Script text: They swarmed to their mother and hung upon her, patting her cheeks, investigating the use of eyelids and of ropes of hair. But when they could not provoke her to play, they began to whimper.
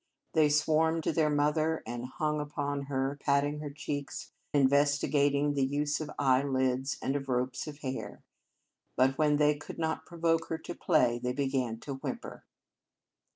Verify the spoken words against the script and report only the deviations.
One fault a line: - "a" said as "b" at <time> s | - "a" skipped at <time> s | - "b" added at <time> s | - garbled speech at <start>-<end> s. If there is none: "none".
none